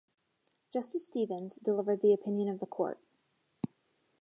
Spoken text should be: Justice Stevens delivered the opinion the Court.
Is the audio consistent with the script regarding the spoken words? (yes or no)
no